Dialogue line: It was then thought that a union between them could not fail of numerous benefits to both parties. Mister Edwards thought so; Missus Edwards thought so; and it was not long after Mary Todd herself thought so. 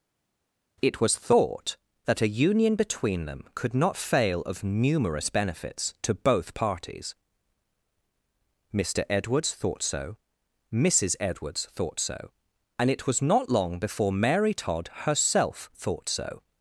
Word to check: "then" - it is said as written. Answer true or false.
false